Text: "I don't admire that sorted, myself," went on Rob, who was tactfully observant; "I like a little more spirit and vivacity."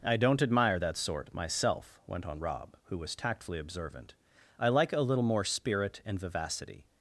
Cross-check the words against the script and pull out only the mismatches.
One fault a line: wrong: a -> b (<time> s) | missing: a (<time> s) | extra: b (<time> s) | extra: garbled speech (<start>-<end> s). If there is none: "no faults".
wrong: sorted -> sort (1.0 s)